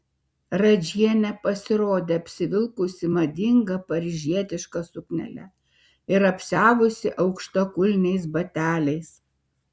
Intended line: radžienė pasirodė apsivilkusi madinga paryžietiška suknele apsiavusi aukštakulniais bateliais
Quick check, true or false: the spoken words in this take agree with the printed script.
false